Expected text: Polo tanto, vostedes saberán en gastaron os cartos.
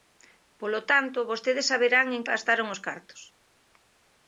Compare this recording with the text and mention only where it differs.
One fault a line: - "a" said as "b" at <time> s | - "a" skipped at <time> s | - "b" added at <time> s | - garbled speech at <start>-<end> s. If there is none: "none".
none